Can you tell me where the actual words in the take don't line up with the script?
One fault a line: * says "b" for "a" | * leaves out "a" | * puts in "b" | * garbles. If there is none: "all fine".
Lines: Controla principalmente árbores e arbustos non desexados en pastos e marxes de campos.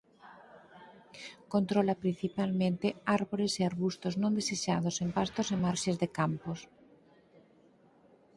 all fine